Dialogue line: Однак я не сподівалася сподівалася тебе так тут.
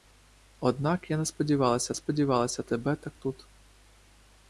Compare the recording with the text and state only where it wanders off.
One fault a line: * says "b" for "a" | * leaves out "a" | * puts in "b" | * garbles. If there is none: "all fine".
all fine